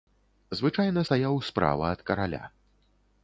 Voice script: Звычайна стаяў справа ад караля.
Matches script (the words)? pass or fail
pass